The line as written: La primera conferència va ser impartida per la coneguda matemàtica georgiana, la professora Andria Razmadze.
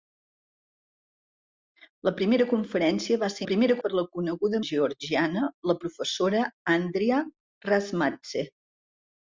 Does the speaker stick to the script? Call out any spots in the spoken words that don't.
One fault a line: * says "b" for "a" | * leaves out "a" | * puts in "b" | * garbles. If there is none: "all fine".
* says "primera" for "impartida"
* leaves out "matemàtica"